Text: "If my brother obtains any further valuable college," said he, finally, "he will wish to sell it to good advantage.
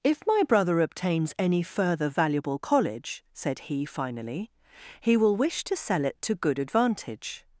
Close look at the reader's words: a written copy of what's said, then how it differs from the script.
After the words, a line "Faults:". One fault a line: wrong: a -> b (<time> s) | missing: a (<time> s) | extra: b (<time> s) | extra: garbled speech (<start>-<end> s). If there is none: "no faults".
"If my brother obtains any further valuable college," said he, finally, "he will wish to sell it to good advantage.
Faults:
no faults